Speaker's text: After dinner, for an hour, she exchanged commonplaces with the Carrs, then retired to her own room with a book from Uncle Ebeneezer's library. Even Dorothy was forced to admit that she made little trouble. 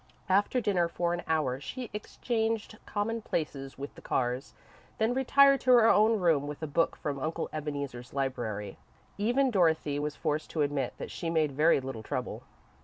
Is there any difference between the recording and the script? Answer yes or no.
yes